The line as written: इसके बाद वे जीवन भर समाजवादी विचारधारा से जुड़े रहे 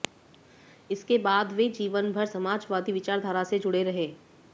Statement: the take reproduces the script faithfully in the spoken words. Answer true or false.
true